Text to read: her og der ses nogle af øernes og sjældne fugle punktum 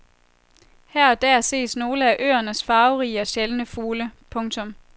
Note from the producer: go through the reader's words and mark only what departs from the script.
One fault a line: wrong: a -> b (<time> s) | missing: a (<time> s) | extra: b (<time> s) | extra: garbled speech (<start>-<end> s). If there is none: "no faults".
extra: farverige (2.6 s)